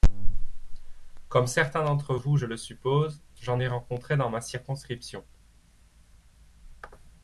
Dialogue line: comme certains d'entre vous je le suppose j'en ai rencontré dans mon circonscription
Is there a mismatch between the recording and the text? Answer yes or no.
yes